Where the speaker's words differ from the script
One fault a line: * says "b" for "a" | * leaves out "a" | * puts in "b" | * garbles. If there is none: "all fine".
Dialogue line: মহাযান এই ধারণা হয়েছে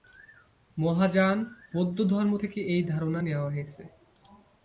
* puts in "বৌদ্ধধর্ম থেকে"
* puts in "নেওয়া"